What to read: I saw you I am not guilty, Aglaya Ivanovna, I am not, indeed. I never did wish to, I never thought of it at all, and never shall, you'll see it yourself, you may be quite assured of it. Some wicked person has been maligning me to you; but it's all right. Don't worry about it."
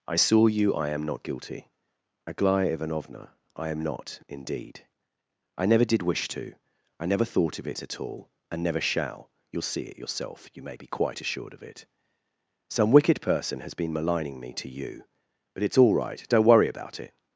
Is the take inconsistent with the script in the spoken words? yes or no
no